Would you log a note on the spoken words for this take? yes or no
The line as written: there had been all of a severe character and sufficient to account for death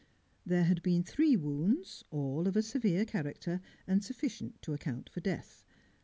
yes